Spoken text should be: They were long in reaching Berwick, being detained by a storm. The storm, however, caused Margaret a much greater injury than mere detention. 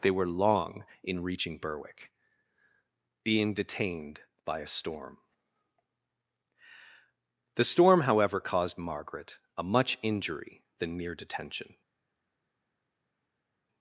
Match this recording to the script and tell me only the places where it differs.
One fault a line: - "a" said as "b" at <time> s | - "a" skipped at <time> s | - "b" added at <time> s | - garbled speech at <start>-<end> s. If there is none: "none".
- "greater" skipped at 10.0 s